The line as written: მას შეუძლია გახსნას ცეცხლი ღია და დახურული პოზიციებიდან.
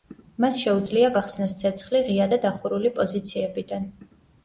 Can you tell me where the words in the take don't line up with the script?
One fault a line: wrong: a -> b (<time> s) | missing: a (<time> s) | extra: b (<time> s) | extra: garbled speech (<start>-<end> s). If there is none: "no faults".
no faults